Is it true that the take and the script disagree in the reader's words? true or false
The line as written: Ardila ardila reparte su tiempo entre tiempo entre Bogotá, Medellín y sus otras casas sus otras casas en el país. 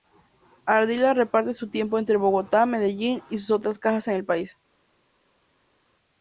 true